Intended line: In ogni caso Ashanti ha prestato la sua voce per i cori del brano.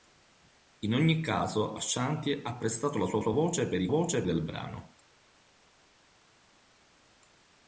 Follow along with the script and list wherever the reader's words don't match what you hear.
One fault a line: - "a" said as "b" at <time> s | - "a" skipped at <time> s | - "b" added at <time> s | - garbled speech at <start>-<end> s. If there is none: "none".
- "sua" added at 3.2 s
- "cori" said as "voce" at 3.9 s